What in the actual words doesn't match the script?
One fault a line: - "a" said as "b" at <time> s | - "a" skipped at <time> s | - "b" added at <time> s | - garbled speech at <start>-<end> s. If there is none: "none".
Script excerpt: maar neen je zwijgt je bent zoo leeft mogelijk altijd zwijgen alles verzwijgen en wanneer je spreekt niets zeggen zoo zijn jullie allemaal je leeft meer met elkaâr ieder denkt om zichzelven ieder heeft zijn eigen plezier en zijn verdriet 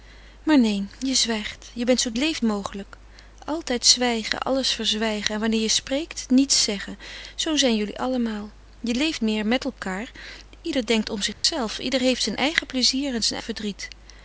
none